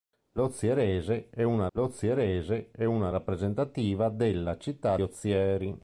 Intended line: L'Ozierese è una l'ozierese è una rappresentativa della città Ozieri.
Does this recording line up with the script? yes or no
yes